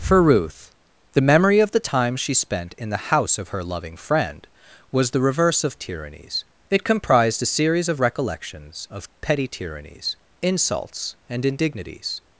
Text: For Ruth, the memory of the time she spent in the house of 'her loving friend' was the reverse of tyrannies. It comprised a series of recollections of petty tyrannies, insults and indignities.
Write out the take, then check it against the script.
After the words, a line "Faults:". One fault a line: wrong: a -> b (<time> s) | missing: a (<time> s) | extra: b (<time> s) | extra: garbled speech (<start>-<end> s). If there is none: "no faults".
For Ruth, the memory of the time she spent in the house of 'her loving friend' was the reverse of tyrannies. It comprised a series of recollections of petty tyrannies, insults and indignities.
Faults:
no faults